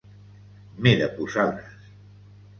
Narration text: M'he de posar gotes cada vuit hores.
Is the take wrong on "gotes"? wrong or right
wrong